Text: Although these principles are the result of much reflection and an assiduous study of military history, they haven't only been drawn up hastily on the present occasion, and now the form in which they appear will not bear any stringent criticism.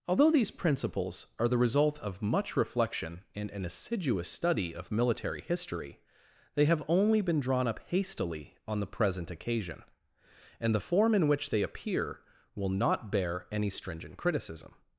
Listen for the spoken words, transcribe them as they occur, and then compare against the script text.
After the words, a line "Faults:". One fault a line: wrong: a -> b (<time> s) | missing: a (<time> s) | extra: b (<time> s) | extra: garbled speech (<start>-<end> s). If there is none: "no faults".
Although these principles are the result of much reflection and an assiduous study of military history, they have only been drawn up hastily on the present occasion, and the form in which they appear will not bear any stringent criticism.
Faults:
wrong: haven't -> have (6.7 s)
missing: now (10.7 s)